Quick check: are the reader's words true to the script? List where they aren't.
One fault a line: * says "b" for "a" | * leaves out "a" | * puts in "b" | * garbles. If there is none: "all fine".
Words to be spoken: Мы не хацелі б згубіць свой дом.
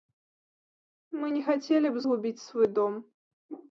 all fine